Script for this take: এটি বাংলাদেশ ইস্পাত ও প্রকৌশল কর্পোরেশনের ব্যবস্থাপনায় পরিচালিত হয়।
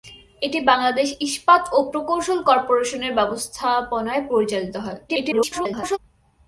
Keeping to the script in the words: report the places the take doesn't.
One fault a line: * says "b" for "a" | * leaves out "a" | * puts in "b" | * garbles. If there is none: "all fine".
* garbles